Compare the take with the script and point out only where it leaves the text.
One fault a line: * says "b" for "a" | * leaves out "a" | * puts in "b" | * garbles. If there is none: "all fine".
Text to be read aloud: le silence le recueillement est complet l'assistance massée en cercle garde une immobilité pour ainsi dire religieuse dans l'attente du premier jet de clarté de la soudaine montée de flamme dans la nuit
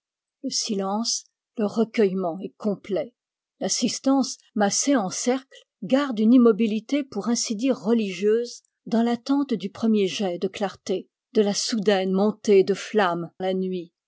* leaves out "dans"